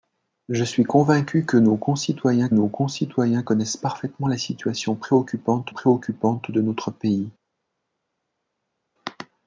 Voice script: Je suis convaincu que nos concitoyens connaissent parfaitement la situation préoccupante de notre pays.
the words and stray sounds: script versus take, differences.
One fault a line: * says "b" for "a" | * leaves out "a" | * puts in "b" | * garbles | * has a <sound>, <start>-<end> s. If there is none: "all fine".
* puts in "nos concitoyens"
* puts in "préoccupante"